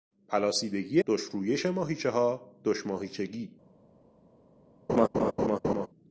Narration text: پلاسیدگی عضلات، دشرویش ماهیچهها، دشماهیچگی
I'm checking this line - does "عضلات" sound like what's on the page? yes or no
no